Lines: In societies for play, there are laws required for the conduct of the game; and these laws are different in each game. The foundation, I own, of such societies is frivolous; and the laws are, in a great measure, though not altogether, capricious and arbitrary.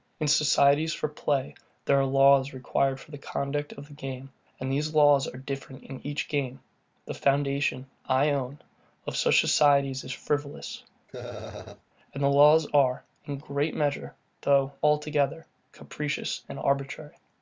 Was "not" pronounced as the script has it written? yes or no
no